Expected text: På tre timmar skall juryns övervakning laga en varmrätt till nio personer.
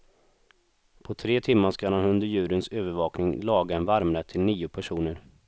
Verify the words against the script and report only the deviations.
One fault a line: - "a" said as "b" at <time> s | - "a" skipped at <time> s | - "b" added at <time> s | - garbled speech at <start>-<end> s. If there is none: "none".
- "han under" added at 1.9 s